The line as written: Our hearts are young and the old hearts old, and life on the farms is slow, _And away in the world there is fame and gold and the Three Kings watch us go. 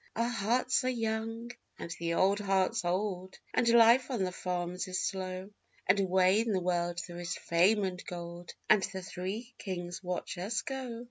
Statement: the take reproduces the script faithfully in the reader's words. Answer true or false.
true